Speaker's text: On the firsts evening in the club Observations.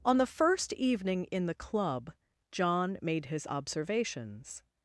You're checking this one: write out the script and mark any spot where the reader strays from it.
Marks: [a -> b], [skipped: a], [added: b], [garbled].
On the [firsts -> first] evening in the club [added: John made his] Observations.